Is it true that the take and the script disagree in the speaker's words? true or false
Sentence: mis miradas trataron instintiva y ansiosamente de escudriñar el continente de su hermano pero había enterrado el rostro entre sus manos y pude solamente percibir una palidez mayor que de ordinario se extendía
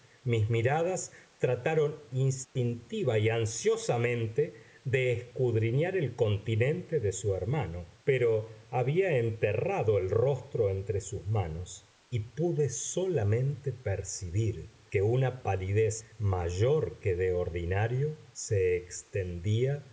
true